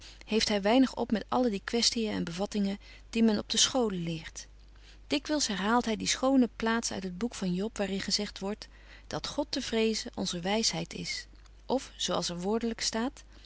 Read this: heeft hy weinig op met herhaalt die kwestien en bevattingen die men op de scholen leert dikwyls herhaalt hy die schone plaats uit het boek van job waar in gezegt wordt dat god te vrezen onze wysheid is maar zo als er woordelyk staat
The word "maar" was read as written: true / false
false